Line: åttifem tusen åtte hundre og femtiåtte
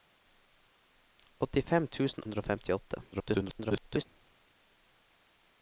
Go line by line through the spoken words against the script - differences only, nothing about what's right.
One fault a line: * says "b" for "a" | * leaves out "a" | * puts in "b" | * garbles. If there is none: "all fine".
* leaves out "åtte"
* garbles